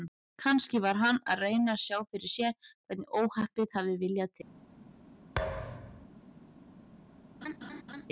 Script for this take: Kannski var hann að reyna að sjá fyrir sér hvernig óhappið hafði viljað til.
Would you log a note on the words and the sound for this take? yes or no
yes